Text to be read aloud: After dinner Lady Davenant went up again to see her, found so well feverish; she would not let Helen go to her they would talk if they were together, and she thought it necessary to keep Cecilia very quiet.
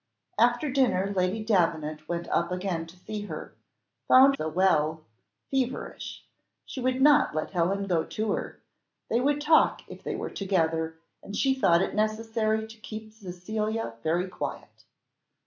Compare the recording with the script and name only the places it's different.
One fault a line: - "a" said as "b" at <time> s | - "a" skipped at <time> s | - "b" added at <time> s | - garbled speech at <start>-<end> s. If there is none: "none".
none